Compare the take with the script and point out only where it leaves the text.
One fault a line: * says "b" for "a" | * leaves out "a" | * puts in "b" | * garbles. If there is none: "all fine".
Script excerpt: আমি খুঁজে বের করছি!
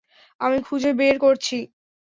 all fine